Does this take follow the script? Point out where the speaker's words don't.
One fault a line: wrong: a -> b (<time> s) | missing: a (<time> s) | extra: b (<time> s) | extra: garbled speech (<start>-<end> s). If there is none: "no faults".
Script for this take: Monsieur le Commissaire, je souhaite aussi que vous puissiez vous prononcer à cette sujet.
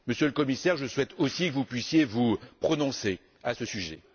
wrong: cette -> ce (3.5 s)